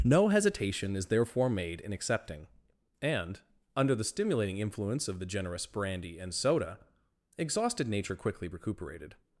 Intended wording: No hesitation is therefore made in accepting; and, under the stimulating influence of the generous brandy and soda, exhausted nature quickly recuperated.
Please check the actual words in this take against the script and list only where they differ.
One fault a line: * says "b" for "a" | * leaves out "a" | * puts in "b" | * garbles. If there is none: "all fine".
all fine